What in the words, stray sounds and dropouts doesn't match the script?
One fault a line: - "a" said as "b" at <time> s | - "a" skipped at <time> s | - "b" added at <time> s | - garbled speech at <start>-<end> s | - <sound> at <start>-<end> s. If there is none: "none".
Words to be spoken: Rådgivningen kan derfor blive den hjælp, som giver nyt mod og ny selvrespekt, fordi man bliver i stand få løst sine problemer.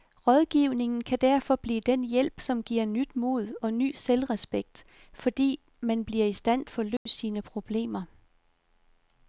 - dropout at 7.0-7.1 s